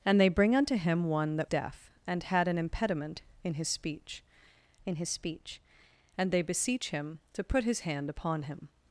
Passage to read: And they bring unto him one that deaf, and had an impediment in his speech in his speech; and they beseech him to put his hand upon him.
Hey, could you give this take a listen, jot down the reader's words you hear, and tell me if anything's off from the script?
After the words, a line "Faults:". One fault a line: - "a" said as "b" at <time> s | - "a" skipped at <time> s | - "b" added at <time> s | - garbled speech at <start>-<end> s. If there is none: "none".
And they bring unto him one that deaf, and had an impediment in his speech in his speech; and they beseech him to put his hand upon him.
Faults:
none